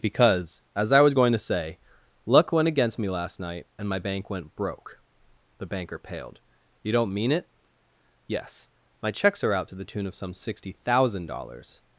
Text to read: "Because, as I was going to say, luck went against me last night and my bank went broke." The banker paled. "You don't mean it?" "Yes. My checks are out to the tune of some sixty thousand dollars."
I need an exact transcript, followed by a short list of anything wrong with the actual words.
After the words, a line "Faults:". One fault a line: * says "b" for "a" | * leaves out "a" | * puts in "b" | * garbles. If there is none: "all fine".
"Because, as I was going to say, luck went against me last night and my bank went broke." The banker paled. "You don't mean it?" "Yes. My checks are out to the tune of some sixty thousand dollars."
Faults:
all fine